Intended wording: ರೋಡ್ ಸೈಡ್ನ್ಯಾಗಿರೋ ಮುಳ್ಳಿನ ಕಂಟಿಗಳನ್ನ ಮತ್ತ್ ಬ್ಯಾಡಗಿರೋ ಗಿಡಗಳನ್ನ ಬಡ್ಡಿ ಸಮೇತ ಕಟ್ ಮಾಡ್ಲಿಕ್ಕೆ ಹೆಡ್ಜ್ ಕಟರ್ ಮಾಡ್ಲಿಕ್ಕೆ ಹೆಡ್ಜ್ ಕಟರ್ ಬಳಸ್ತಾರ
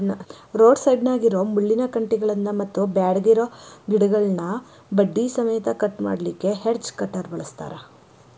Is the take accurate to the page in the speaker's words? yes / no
no